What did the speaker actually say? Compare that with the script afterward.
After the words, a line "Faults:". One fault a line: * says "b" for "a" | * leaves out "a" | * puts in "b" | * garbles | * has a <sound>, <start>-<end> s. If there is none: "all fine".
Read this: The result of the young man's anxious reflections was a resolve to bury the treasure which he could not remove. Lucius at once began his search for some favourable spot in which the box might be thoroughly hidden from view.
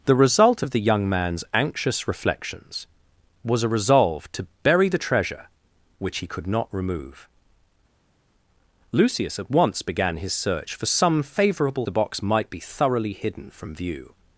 The result of the young man's anxious reflections was a resolve to bury the treasure which he could not remove. Lucius at once began his search for some favourable the box might be thoroughly hidden from view.
Faults:
* leaves out "spot in which"